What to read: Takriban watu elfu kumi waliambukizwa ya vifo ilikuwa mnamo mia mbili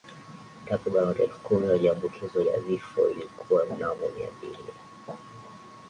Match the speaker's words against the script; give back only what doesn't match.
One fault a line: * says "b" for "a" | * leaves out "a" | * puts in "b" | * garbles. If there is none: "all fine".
all fine